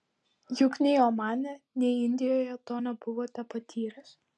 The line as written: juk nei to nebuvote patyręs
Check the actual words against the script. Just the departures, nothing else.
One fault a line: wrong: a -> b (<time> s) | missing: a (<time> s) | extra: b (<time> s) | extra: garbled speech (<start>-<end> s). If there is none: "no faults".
extra: omane nei indijoje (1.1 s)